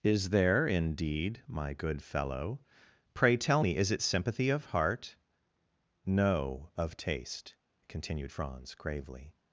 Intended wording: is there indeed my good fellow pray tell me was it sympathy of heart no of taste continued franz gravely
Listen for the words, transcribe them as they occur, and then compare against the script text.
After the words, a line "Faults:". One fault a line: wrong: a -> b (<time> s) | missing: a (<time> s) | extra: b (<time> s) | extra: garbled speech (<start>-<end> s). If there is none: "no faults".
is there indeed my good fellow pray tell me is it sympathy of heart no of taste continued franz gravely
Faults:
wrong: was -> is (3.8 s)